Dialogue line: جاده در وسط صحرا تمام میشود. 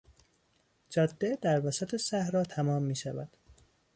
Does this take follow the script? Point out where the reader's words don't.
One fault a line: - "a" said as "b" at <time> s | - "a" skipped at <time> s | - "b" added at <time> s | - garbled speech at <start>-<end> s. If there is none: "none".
none